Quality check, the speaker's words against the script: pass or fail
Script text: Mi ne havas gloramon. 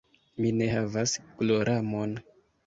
pass